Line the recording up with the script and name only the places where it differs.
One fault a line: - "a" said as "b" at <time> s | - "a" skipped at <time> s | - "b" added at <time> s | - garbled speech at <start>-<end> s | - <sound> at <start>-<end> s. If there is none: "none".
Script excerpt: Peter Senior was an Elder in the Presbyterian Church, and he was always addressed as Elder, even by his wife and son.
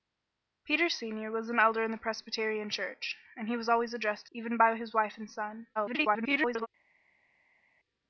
- "as Elder" skipped at 4.3 s
- garbled speech at 5.8-6.7 s